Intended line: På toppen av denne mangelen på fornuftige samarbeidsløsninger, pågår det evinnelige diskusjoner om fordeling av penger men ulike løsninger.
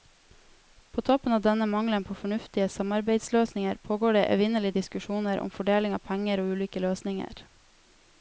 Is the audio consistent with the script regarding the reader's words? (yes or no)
no